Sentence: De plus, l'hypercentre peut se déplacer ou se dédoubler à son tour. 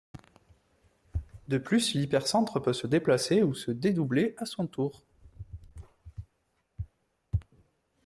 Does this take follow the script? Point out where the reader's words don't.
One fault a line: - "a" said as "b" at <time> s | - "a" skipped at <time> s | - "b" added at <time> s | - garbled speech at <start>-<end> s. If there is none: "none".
none